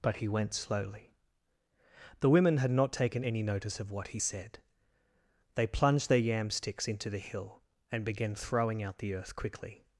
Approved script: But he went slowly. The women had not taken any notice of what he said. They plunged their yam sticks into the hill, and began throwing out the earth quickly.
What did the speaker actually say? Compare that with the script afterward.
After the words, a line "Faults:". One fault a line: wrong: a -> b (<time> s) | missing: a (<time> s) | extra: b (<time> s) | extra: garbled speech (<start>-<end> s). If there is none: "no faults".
But he went slowly. The women had not taken any notice of what he said. They plunged their yam sticks into the hill, and began throwing out the earth quickly.
Faults:
no faults